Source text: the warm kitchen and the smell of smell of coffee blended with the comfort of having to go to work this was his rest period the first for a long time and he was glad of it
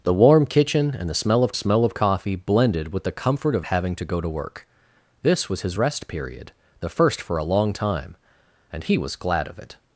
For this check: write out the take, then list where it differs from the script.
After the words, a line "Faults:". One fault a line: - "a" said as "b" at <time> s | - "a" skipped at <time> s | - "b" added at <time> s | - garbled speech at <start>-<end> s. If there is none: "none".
the warm kitchen and the smell of smell of coffee blended with the comfort of having to go to work this was his rest period the first for a long time and he was glad of it
Faults:
none